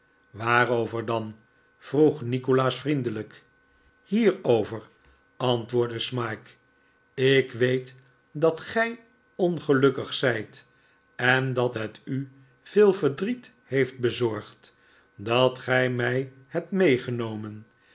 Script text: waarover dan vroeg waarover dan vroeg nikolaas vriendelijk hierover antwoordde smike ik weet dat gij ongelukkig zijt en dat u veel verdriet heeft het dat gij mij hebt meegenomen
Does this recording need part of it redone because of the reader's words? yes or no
yes